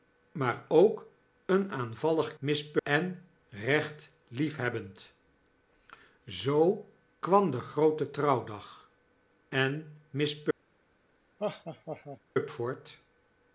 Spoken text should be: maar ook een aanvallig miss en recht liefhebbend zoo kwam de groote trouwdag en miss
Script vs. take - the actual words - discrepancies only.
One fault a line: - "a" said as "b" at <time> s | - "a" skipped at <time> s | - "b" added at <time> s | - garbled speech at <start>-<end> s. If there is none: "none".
none